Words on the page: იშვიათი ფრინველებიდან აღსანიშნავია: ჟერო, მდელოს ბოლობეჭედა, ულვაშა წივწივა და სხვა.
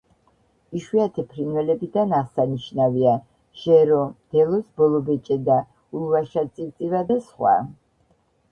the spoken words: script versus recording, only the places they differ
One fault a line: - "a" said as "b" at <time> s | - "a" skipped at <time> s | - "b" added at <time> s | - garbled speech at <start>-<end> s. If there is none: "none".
none